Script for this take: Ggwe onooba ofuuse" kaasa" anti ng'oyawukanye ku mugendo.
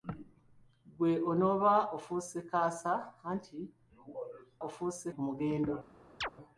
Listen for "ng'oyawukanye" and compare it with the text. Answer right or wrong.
wrong